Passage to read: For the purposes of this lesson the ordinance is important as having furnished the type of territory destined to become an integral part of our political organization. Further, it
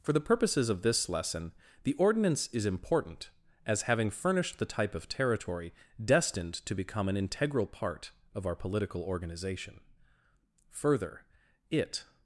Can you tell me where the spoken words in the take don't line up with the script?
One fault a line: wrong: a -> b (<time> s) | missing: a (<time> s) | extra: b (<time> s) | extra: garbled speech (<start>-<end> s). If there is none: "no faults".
no faults